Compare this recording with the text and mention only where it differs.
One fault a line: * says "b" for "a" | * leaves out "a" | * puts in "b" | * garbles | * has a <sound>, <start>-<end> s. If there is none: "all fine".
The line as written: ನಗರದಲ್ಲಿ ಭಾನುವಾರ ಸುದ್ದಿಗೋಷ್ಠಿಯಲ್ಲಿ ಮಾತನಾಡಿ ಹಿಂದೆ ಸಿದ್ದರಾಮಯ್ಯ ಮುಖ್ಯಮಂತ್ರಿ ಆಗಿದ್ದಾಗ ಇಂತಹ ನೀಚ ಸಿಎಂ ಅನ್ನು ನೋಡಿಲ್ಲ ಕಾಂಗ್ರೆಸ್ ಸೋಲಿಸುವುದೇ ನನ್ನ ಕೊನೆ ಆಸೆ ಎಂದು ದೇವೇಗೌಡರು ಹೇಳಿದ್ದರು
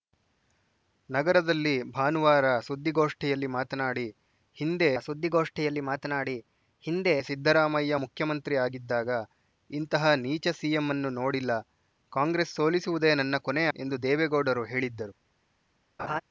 * puts in "ಸುದ್ದಿಗೋಷ್ಠಿಯಲ್ಲಿ ಮಾತನಾಡಿ ಹಿಂದೆ"
* leaves out "ಆಸೆ"
* has a laugh, 16.0-16.2 s